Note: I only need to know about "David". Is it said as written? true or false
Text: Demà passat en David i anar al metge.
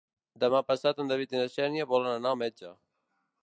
true